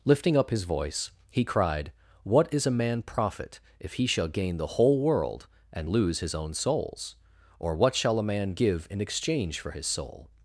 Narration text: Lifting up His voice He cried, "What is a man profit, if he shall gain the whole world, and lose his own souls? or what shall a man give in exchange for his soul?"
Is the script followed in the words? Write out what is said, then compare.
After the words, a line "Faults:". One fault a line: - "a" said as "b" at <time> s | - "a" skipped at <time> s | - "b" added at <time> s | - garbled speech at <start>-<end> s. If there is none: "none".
Lifting up His voice He cried, "What is a man profit, if he shall gain the whole world, and lose his own souls? or what shall a man give in exchange for his soul?"
Faults:
none